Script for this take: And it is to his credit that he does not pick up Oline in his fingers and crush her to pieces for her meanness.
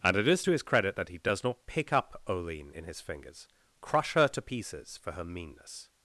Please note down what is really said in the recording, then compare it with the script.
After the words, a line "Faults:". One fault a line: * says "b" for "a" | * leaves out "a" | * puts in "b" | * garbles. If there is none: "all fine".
And it is to his credit that he does not pick up Oline in his fingers crush her to pieces for her meanness.
Faults:
* leaves out "and"